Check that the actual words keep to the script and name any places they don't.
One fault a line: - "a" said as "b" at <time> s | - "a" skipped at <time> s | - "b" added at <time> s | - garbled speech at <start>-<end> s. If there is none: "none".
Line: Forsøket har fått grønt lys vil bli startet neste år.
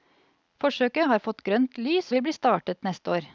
none